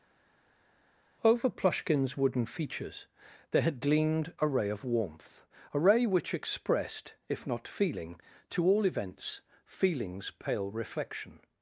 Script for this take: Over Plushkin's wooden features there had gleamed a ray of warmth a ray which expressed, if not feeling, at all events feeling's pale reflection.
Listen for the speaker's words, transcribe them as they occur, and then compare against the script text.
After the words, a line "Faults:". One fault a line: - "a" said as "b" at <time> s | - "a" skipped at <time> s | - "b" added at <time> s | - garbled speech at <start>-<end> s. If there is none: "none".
Over Plushkin's wooden features there had gleamed a ray of warmth a ray which expressed, if not feeling, to all events feeling's pale reflection.
Faults:
- "at" said as "to" at 8.5 s